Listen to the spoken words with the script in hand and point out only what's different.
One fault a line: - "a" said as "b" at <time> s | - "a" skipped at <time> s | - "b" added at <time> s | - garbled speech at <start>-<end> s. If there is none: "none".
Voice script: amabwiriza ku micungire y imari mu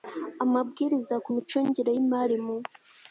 none